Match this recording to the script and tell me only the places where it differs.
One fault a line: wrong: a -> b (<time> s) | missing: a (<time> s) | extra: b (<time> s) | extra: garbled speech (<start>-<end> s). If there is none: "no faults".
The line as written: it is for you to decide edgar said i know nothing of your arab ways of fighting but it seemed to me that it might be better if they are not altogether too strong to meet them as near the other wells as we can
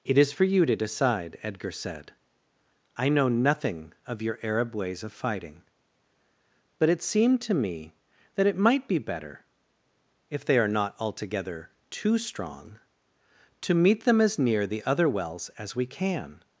no faults